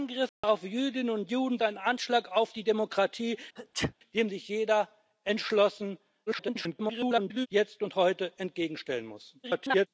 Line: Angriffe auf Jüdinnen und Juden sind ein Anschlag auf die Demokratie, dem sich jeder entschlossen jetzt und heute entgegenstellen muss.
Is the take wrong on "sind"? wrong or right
wrong